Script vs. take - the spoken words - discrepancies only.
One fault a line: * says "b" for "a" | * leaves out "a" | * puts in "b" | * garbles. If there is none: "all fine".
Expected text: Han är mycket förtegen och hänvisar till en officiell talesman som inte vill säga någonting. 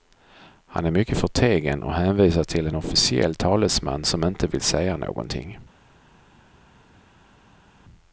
all fine